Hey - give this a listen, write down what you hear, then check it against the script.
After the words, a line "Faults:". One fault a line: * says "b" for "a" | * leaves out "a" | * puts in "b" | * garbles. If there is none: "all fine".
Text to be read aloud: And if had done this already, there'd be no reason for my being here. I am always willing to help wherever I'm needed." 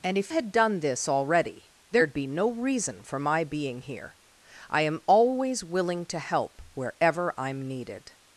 And if had done this already, there'd be no reason for my being here. I am always willing to help wherever I'm needed."
Faults:
all fine